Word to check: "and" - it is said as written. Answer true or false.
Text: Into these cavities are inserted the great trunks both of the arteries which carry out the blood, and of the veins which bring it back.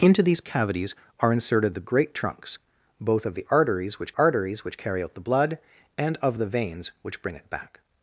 true